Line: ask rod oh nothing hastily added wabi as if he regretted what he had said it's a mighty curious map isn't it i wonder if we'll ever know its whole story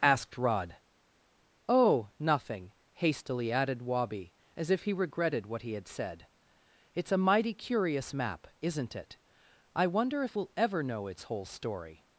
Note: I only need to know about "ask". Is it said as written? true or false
false